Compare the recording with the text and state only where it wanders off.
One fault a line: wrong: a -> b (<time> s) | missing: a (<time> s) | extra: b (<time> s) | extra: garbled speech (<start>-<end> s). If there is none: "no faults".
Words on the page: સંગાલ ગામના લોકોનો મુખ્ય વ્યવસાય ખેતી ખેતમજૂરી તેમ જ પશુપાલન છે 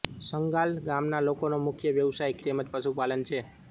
missing: ખેતી ખેતમજૂરી (2.4 s)